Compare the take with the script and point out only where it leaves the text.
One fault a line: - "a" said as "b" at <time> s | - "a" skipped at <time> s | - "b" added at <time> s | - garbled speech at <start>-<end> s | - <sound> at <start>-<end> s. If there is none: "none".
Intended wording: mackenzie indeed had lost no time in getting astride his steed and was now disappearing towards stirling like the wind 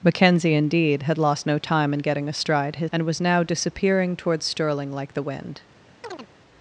- "steed" skipped at 2.9 s
- chirp at 6.0-6.3 s